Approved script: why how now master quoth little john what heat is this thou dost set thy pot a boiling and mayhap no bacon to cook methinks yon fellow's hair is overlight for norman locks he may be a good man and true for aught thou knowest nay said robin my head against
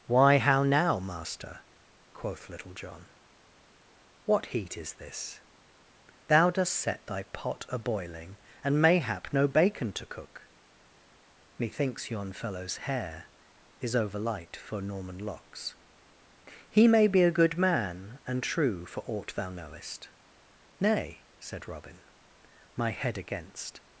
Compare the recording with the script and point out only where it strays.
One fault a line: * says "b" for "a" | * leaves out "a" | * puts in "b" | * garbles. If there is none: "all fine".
all fine